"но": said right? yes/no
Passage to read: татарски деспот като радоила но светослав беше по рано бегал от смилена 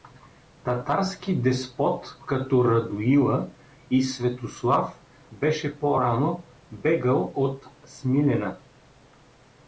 no